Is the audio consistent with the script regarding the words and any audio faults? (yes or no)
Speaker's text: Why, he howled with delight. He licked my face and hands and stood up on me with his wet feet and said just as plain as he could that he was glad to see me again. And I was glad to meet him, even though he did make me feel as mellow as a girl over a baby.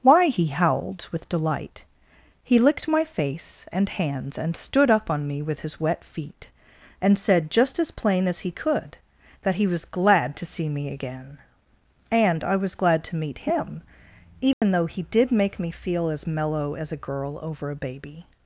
no